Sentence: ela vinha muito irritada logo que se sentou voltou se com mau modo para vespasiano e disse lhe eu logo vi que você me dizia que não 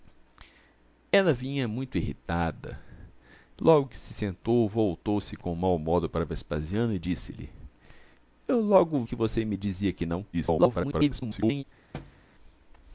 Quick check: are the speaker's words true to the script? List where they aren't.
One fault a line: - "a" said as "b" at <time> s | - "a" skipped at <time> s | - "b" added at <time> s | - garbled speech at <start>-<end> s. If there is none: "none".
- "vi" skipped at 9.0 s
- garbled speech at 10.3-11.6 s